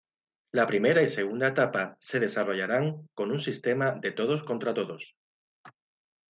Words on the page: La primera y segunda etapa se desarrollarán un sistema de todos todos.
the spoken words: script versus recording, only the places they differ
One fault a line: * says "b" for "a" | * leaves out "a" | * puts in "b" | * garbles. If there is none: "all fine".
* puts in "con"
* puts in "contra"